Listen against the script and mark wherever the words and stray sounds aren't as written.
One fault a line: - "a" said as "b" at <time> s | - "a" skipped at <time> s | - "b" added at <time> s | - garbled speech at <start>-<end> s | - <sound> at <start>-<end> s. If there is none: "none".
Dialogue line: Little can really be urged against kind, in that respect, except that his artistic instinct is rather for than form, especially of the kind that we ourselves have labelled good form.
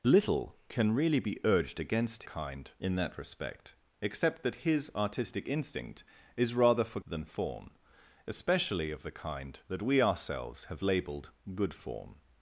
none